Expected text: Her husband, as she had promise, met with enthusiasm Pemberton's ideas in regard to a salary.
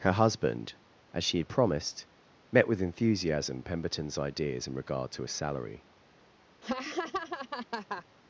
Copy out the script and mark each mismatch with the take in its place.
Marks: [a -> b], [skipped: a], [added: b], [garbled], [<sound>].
Her husband, as she had [promise, -> promised] met with enthusiasm Pemberton's ideas in regard to a salary. [laugh]